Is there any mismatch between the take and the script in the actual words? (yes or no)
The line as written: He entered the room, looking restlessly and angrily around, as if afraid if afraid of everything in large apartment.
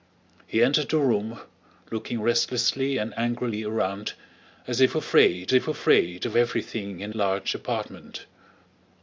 no